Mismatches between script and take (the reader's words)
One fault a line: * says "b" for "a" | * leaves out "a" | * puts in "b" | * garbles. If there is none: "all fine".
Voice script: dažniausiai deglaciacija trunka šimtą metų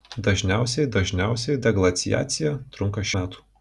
* puts in "dažniausiai"
* leaves out "šimtą"